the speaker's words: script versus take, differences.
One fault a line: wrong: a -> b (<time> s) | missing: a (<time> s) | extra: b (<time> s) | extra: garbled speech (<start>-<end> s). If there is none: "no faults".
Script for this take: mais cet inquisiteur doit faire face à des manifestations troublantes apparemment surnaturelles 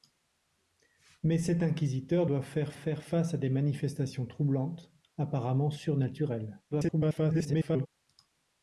extra: faire (2.7 s)
extra: garbled speech (6.7-7.9 s)